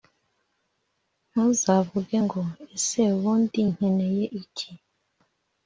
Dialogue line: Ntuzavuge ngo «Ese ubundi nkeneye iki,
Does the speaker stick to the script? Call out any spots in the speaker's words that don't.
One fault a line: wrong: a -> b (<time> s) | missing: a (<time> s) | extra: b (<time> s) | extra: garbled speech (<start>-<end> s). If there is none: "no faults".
no faults